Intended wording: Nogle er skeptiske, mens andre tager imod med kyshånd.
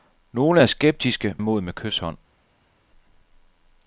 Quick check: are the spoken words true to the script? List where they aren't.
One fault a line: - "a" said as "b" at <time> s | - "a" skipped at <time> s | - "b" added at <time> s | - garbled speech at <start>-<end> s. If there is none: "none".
- "mens andre tager" skipped at 1.4 s